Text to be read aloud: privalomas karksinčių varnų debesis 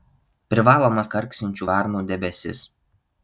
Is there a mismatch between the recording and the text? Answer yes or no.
no